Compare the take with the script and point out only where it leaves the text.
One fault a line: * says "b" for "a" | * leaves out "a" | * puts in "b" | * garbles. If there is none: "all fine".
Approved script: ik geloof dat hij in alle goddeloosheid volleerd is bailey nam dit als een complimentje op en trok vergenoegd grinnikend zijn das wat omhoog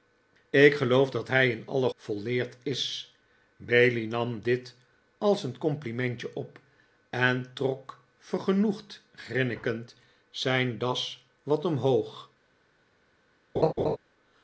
* leaves out "goddeloosheid"